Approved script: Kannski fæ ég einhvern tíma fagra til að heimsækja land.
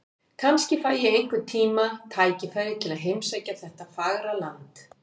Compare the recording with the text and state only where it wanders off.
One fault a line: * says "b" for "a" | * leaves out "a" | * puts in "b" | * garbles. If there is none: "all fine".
* says "tækifæri" for "fagra"
* puts in "þetta fagra"